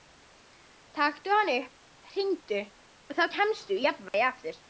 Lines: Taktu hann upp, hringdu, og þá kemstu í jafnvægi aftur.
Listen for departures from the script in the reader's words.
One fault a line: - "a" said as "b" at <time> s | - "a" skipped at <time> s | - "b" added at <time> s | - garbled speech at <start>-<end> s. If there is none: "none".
none